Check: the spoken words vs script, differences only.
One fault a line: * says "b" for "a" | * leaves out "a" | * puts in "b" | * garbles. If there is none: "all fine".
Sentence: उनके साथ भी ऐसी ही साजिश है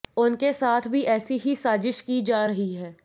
* puts in "की जा रही"